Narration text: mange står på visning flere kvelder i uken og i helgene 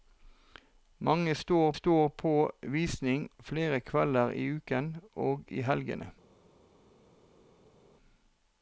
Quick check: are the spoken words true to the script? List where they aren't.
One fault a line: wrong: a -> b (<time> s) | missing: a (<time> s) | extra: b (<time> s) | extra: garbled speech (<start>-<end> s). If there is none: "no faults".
extra: står (1.7 s)